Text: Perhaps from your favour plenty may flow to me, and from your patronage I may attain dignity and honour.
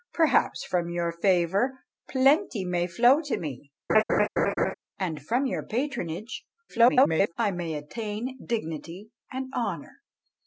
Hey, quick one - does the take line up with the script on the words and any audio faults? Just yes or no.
no